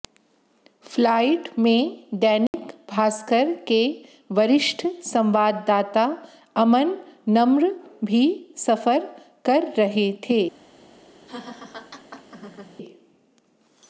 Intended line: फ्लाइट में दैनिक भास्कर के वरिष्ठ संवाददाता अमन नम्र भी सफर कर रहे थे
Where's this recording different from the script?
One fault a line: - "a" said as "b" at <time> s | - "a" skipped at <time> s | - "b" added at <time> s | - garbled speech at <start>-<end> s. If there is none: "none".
none